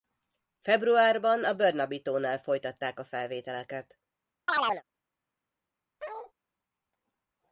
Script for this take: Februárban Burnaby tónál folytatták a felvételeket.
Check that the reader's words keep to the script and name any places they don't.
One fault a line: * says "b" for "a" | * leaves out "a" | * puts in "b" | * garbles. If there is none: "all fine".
* puts in "a"